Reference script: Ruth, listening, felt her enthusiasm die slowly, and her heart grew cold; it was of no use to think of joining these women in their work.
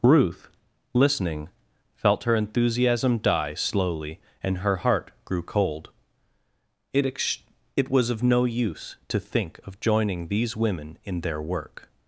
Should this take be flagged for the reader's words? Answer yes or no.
yes